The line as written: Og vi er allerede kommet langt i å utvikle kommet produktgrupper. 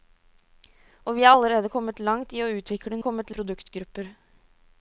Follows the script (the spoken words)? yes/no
yes